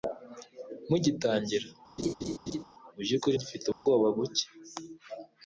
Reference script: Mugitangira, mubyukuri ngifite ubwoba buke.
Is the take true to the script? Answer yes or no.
yes